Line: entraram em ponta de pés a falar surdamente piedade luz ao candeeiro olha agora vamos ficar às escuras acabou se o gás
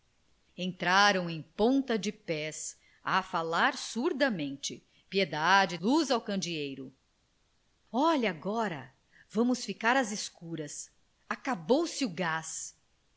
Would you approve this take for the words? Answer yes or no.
yes